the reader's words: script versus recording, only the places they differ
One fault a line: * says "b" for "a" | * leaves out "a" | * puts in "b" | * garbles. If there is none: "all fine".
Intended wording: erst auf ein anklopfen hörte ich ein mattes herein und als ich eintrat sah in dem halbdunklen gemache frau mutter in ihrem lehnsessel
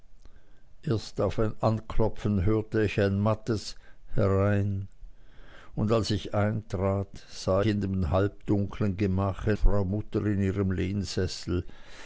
all fine